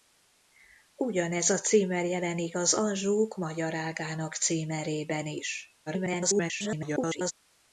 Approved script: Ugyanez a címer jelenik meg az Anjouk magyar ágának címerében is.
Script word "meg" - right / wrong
wrong